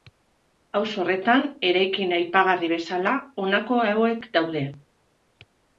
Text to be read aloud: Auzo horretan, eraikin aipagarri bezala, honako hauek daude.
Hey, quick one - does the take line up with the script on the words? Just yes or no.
yes